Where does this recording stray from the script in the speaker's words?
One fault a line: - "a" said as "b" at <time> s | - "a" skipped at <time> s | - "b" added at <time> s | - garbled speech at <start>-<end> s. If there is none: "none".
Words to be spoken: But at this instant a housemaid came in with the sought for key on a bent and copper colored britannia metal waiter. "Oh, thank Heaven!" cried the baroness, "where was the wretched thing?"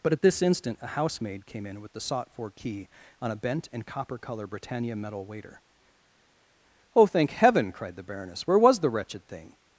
- "colored" said as "color" at 4.2 s